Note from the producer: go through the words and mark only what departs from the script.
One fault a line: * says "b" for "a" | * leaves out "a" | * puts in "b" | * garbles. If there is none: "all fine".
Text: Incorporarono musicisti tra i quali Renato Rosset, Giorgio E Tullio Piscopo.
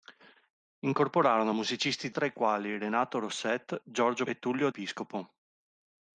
all fine